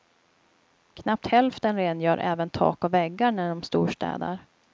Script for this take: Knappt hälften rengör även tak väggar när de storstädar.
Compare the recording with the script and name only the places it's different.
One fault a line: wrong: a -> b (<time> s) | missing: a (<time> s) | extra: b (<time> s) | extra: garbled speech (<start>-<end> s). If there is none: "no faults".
extra: och (2.8 s)